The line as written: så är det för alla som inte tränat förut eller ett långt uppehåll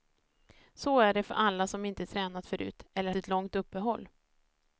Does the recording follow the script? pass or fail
pass